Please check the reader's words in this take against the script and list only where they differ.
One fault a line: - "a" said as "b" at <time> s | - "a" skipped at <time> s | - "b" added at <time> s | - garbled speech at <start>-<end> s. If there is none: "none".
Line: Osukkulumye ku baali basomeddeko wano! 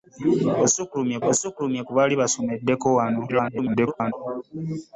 - "osukkulumye" added at 1.3 s
- garbled speech at 3.3-4.1 s